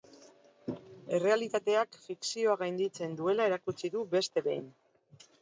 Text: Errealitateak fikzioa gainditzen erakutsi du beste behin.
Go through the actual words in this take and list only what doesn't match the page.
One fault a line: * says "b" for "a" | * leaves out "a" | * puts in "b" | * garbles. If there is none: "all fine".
* puts in "duela"